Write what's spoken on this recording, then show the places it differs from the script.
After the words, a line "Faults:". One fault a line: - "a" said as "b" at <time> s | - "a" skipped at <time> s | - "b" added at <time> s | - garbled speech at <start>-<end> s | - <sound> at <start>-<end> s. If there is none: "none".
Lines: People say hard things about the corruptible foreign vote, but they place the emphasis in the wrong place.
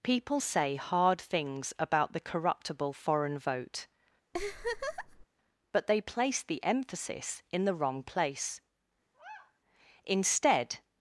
People say hard things about the corruptible foreign vote, but they place the emphasis in the wrong place. Instead
Faults:
- laugh at 4.3-5.3 s
- sigh at 9.1-9.6 s
- "Instead" added at 10.0 s